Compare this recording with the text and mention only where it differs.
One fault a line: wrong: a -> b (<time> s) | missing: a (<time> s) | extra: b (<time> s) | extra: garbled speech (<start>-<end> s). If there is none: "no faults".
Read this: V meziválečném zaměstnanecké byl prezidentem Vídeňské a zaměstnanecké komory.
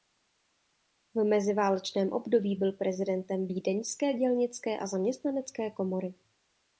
wrong: zaměstnanecké -> období (2.1 s)
extra: dělnické (4.1 s)